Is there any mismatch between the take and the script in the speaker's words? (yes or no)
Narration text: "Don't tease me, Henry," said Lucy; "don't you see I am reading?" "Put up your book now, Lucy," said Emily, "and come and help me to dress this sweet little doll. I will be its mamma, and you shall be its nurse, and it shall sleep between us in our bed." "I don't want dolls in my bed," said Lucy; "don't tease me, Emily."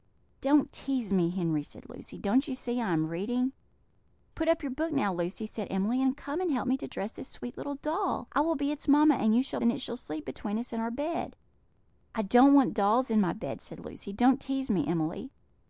yes